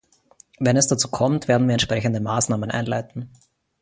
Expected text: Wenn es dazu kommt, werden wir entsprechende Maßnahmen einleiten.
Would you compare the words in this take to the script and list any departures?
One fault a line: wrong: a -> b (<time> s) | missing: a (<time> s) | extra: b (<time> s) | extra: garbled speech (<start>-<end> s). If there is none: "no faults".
no faults